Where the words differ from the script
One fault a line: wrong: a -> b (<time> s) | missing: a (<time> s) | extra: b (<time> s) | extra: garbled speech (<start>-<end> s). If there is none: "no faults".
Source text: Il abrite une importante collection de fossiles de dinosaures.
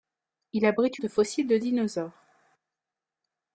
missing: une importante collection (1.0 s)